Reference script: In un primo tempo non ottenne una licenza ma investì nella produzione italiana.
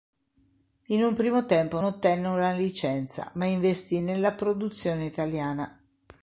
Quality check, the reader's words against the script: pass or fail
fail